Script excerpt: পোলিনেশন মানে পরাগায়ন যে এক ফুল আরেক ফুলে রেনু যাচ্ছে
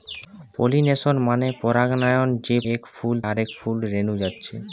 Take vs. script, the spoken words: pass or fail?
pass